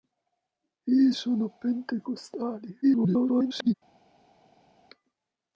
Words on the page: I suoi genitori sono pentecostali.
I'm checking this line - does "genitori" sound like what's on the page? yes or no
no